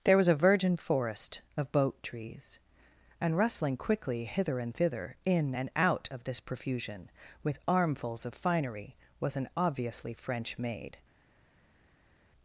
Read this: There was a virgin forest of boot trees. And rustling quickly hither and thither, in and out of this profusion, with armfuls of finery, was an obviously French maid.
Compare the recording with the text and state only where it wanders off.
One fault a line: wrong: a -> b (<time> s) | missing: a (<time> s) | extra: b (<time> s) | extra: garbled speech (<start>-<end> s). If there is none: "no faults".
wrong: boot -> boat (1.7 s)